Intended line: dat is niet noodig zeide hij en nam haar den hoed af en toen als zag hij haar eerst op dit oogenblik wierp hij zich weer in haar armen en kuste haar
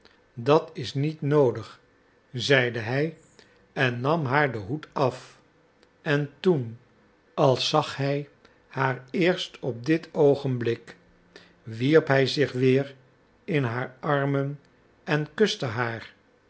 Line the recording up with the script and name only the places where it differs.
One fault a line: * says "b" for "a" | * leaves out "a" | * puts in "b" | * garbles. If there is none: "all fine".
all fine